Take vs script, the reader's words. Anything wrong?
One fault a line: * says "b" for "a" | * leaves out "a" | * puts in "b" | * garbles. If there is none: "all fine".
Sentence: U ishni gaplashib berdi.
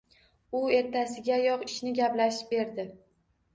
* puts in "ertasigayoq"